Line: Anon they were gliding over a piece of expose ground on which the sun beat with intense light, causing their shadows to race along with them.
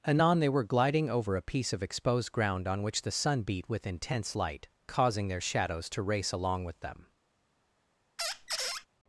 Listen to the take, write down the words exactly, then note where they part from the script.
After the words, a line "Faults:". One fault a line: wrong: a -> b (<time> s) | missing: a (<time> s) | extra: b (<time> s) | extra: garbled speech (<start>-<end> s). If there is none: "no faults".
Anon they were gliding over a piece of exposed ground on which the sun beat with intense light, causing their shadows to race along with them.
Faults:
wrong: expose -> exposed (1.8 s)